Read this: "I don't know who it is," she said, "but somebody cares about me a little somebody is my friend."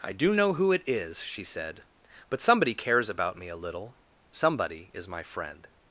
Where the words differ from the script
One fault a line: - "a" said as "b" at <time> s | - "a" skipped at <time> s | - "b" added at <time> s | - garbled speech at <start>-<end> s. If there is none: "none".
- "don't" said as "do" at 0.1 s